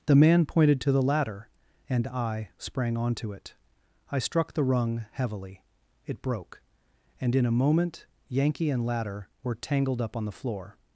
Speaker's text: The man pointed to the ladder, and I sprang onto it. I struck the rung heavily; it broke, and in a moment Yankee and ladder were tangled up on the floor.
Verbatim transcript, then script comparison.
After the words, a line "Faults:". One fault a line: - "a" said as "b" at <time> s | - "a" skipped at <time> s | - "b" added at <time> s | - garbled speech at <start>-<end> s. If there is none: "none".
The man pointed to the ladder, and I sprang onto it. I struck the rung heavily; it broke, and in a moment Yankee and ladder were tangled up on the floor.
Faults:
none